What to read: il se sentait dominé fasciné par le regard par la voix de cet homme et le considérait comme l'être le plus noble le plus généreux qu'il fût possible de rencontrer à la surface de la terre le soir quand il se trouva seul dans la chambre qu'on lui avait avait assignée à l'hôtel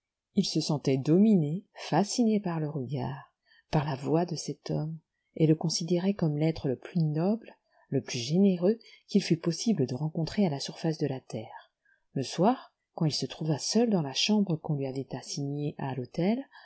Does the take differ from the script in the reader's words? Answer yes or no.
yes